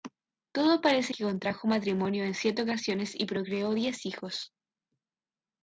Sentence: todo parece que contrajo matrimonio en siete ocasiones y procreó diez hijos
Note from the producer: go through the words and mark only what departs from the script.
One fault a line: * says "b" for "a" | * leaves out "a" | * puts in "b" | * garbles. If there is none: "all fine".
all fine